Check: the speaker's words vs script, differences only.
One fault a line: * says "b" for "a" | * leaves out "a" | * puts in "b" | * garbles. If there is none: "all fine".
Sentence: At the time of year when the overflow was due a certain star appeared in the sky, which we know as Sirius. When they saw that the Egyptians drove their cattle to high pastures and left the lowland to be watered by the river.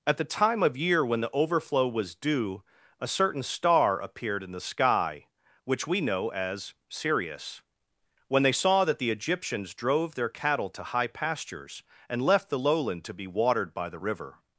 all fine